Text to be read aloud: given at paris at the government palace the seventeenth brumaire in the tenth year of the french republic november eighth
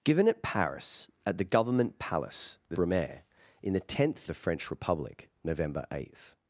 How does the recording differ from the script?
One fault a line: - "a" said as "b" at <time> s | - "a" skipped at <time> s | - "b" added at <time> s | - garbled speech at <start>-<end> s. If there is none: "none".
- "seventeenth" skipped at 2.8 s
- "year of" skipped at 4.3 s